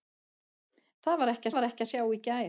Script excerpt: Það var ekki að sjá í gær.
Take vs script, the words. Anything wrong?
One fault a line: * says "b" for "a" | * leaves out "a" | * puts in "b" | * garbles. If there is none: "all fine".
* puts in "var ekki"